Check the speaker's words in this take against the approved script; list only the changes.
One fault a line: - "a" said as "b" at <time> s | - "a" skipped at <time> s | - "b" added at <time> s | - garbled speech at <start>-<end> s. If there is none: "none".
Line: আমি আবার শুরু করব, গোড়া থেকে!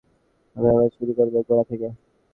none